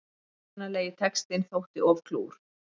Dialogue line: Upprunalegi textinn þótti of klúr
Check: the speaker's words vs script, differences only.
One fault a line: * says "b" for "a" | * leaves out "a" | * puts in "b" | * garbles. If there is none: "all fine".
all fine